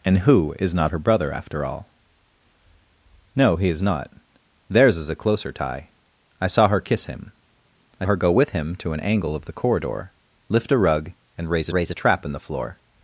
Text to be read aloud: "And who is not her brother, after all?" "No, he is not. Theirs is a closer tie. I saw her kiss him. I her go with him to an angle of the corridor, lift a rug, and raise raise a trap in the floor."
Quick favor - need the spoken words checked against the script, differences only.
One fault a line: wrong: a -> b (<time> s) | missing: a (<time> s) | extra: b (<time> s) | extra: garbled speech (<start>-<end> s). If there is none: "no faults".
no faults